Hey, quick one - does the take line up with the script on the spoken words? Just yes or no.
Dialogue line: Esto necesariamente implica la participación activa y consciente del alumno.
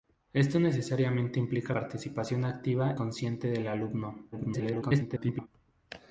no